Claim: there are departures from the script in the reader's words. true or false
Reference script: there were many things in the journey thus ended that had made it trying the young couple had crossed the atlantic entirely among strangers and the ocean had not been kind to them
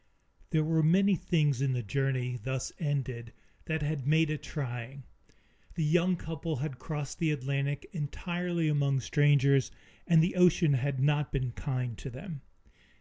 false